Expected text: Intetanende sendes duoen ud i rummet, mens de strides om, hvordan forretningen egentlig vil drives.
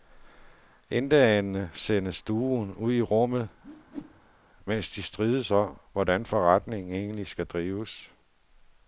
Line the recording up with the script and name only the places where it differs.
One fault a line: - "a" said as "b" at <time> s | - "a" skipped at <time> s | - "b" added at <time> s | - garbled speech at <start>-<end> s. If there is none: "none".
- "vil" said as "skal" at 7.3 s